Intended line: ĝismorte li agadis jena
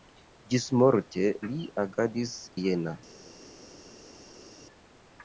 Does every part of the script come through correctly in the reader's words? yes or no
yes